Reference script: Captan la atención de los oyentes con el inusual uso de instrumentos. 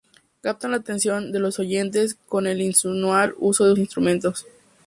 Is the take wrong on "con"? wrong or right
right